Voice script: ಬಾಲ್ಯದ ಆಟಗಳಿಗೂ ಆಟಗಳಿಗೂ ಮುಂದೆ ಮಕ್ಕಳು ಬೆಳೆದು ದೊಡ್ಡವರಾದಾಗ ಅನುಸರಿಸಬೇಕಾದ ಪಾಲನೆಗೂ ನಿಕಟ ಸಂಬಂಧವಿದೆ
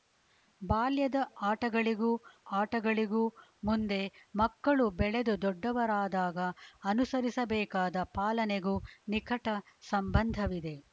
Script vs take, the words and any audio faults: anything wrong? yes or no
no